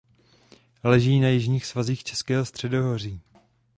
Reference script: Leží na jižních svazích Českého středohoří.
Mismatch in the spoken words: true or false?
false